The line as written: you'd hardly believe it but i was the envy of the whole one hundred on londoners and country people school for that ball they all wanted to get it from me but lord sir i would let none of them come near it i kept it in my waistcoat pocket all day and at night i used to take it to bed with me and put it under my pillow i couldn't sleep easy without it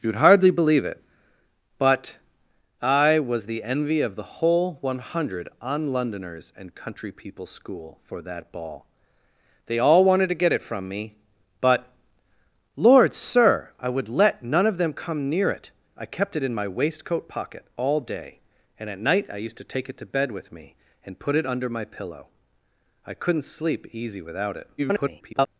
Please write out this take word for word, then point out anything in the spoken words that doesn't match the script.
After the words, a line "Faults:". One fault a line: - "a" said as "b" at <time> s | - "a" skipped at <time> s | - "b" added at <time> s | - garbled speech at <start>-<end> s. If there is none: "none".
you'd hardly believe it but i was the envy of the whole one hundred on londoners and country people school for that ball they all wanted to get it from me but lord sir i would let none of them come near it i kept it in my waistcoat pocket all day and at night i used to take it to bed with me and put it under my pillow i couldn't sleep easy without it [garbled]
Faults:
- garbled speech at 24.8-25.5 s